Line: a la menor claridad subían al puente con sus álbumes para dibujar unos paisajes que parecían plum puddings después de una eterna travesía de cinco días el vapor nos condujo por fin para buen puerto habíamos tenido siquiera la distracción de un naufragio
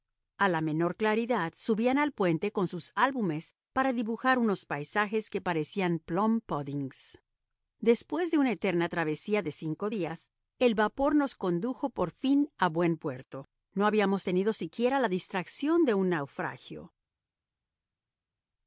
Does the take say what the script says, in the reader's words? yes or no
no